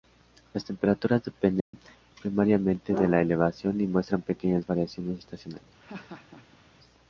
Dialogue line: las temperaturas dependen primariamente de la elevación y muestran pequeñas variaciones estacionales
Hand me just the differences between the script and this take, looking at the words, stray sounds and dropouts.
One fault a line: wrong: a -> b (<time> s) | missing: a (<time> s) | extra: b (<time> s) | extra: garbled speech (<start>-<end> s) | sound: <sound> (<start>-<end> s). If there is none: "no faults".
sound: dropout (1.6-1.7 s)
sound: laugh (5.8-6.6 s)